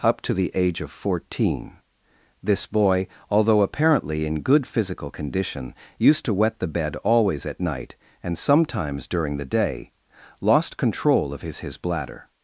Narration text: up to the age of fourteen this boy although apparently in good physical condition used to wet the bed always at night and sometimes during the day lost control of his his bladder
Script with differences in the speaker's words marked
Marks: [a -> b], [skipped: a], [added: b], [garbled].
up to the age of fourteen this boy although apparently in good physical condition used to wet the bed always at night and sometimes during the day lost control of his his bladder